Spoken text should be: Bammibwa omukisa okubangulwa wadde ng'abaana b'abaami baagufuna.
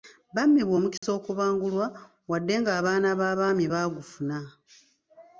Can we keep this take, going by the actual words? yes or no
yes